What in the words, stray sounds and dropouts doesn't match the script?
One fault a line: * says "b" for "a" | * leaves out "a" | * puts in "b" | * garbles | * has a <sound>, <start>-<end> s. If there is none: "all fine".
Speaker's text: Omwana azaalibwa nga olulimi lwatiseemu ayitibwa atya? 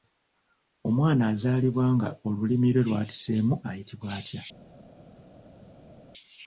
* puts in "lwe"